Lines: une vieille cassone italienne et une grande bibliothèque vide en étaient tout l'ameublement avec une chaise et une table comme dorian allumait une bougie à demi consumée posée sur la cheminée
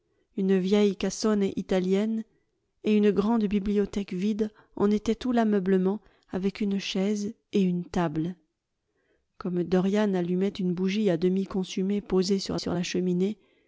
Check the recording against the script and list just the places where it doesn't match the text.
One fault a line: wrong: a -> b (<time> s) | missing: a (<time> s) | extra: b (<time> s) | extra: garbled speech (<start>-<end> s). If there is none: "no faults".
extra: sur (12.6 s)